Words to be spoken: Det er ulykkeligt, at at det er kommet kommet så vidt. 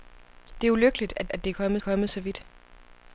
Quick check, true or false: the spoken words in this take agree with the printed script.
true